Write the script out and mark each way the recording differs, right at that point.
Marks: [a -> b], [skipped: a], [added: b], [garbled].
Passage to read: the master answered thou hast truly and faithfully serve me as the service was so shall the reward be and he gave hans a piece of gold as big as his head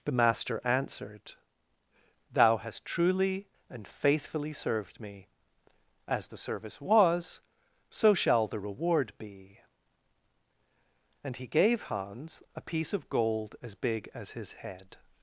the master answered thou hast truly and faithfully [serve -> served] me as the service was so shall the reward be and he gave hans a piece of gold as big as his head